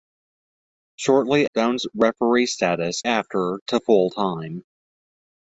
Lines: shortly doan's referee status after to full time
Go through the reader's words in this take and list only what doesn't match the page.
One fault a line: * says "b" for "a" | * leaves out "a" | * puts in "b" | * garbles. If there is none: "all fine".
all fine